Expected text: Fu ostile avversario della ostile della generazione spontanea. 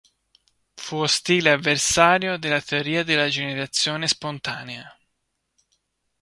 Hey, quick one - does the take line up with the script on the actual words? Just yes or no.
no